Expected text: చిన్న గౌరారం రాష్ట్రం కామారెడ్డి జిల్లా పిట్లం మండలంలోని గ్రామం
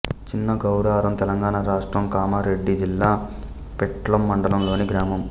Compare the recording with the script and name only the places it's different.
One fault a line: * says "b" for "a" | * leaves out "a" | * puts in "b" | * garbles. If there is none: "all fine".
* puts in "తెలంగాణ"